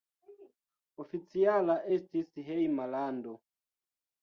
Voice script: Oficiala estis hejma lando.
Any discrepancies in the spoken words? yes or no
no